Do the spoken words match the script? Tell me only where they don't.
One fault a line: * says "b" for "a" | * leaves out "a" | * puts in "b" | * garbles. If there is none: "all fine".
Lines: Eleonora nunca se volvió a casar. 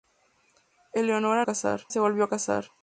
* says "casar" for "nunca"